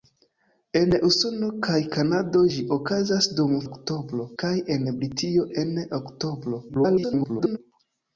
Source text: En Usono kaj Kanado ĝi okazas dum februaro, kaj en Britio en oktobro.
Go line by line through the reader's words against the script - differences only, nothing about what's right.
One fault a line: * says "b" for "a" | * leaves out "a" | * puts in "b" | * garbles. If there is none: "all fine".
* says "oktobro" for "februaro"
* garbles